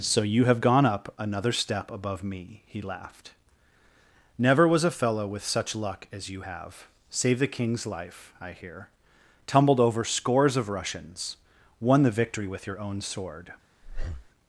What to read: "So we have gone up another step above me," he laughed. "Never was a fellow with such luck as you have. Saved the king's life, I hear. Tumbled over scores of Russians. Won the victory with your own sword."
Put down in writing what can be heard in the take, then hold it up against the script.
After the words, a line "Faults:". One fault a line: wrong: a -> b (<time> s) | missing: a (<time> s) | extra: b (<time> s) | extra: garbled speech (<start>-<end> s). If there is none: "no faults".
"So you have gone up another step above me," he laughed. "Never was a fellow with such luck as you have. Saved the king's life, I hear. Tumbled over scores of Russians. Won the victory with your own sword."
Faults:
wrong: we -> you (0.2 s)